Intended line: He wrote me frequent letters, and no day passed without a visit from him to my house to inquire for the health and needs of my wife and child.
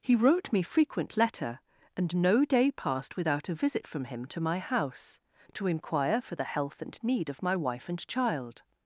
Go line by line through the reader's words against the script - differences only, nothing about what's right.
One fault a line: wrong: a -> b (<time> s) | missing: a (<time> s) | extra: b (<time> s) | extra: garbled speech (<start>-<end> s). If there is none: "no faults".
wrong: letters -> letter (1.1 s)
wrong: needs -> need (7.0 s)